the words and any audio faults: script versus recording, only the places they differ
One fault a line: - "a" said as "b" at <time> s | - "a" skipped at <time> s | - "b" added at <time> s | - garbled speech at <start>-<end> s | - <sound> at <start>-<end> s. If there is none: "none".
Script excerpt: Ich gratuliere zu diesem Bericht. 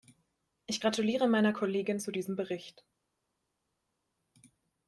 - "meiner Kollegin" added at 1.3 s